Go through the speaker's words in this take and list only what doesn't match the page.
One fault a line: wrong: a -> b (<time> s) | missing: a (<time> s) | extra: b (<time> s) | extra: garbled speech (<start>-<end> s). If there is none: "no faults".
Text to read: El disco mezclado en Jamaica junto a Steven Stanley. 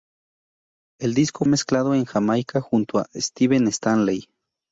no faults